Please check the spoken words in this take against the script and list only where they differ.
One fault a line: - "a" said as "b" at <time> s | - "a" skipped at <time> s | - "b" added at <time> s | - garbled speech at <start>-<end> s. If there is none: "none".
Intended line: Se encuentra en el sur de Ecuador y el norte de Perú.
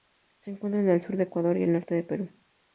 none